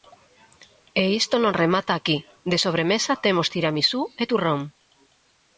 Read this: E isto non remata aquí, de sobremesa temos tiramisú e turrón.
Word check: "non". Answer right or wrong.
right